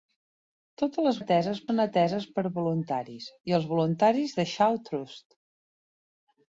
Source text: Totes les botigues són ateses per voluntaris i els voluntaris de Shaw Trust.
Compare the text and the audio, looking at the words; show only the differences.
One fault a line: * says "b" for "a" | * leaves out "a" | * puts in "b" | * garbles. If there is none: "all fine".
* says "ateses" for "botigues"